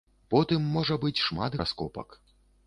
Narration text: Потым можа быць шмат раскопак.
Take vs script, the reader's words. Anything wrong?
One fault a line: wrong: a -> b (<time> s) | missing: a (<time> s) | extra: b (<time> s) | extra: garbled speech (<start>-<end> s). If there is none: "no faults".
no faults